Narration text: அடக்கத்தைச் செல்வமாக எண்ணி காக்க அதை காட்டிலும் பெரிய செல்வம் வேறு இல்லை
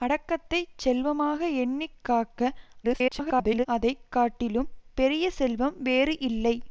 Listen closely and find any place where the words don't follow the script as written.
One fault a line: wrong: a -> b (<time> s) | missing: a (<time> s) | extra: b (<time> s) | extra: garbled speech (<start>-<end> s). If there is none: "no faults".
extra: garbled speech (2.8-3.7 s)